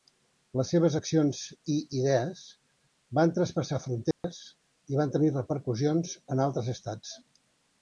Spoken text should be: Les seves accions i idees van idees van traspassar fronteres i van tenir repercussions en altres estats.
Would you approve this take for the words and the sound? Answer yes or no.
no